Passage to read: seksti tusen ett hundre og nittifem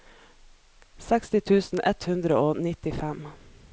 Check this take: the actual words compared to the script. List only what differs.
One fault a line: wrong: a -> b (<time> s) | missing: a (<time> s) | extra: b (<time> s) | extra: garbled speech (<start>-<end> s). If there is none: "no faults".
no faults